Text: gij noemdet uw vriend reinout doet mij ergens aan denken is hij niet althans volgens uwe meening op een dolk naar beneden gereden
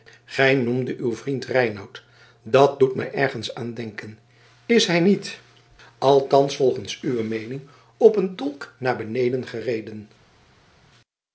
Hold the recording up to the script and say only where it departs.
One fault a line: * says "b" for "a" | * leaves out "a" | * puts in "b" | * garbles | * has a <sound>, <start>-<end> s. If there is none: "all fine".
* puts in "dat"